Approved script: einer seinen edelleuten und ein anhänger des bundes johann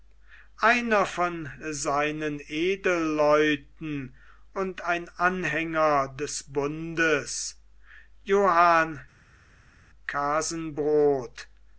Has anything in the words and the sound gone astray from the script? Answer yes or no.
yes